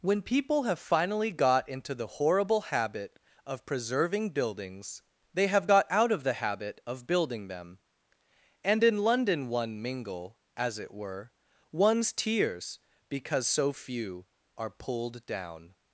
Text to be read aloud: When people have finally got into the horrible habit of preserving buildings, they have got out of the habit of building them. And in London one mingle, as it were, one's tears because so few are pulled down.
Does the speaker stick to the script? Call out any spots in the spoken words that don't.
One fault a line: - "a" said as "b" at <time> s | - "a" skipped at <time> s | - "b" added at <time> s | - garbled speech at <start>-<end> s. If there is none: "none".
none